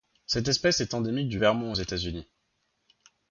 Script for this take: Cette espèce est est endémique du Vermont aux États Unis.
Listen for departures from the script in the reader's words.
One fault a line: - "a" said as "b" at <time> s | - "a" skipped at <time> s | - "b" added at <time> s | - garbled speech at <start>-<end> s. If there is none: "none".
- "est" skipped at 0.9 s